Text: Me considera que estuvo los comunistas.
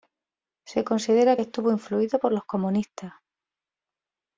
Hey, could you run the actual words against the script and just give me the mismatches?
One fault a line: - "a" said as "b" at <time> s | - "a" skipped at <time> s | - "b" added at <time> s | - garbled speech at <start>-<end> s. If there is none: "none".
- "Me" said as "Se" at 0.7 s
- "influido por" added at 1.7 s